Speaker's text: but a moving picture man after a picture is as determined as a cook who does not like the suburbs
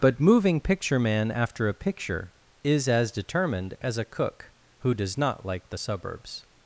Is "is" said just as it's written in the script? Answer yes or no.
yes